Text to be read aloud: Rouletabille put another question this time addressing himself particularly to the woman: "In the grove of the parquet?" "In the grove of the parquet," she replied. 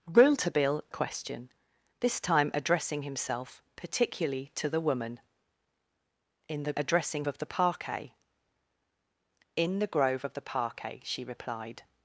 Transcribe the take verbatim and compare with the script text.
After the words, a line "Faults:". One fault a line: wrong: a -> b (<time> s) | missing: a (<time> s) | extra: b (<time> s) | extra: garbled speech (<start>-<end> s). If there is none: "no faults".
Rouletabille question this time addressing himself particularly to the woman: "In the addressing of the parquet?" "In the grove of the parquet," she replied.
Faults:
missing: put another (0.8 s)
wrong: grove -> addressing (6.8 s)